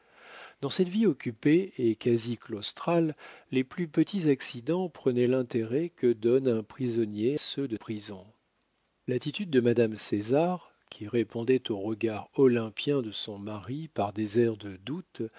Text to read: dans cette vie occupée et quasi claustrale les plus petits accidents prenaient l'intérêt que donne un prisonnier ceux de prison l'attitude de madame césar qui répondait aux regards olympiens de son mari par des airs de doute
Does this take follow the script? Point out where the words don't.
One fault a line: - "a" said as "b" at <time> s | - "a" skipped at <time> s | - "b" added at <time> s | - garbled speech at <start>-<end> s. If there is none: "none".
none